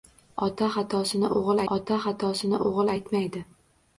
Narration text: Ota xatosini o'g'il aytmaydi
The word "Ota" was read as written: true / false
true